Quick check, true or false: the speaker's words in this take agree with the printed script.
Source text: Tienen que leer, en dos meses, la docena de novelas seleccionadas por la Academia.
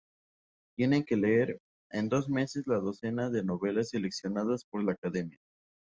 true